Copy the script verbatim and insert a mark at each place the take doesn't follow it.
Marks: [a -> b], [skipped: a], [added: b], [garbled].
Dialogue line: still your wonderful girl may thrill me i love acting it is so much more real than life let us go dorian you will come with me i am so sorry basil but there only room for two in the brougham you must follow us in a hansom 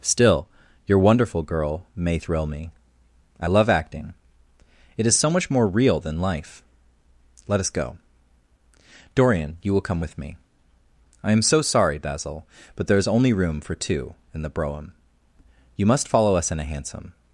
still your wonderful girl may thrill me i love acting it is so much more real than life let us go dorian you will come with me i am so sorry basil but there [added: is] only room for two in the brougham you must follow us in a hansom